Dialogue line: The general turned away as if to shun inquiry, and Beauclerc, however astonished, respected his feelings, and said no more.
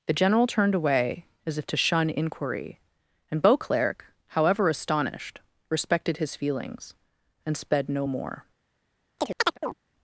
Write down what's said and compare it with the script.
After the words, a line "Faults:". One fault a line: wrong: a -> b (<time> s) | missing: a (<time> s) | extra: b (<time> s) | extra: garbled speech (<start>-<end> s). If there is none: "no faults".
The general turned away as if to shun inquiry, and Beauclerc, however astonished, respected his feelings, and sped no more.
Faults:
wrong: said -> sped (7.5 s)